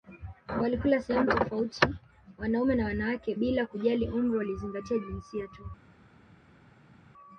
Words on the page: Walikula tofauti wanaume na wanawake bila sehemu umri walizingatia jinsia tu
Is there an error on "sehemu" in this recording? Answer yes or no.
yes